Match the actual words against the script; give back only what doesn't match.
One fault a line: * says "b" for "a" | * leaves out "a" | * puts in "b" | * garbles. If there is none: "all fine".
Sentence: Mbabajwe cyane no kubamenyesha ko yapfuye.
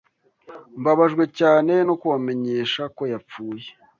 all fine